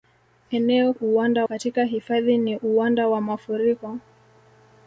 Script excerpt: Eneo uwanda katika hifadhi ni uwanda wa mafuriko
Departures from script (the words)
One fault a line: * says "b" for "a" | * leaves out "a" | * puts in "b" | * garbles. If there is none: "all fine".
all fine